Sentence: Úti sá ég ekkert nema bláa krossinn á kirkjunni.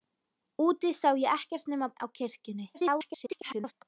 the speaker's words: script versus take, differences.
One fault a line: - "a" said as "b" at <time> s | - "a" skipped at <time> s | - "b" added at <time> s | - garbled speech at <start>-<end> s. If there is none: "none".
- "bláa krossinn" skipped at 1.9 s
- garbled speech at 2.7-3.7 s